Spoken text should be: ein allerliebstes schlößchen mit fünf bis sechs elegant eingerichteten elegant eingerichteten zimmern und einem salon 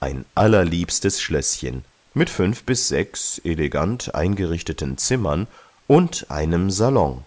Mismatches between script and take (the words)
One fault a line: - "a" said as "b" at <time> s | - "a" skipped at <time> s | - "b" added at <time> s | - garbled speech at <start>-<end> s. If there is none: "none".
- "elegant eingerichteten" skipped at 5.0 s